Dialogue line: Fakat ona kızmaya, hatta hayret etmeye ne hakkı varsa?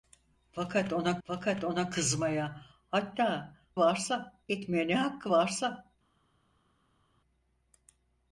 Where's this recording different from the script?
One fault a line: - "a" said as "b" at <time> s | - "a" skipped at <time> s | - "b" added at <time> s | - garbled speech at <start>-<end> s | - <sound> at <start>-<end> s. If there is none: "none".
- "fakat ona" added at 1.2 s
- "hayret" said as "varsa" at 3.8 s